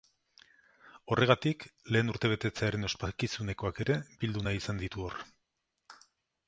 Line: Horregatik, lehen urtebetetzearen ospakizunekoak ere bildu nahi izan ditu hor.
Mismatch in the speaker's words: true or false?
false